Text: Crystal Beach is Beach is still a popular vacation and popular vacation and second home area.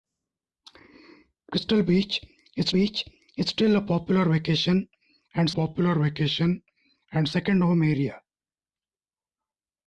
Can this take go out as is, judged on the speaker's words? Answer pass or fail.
pass